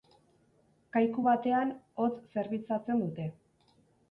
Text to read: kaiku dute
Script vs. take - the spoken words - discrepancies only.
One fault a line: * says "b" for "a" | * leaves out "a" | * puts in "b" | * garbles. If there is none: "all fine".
* puts in "batean hotz zerbitzatzen"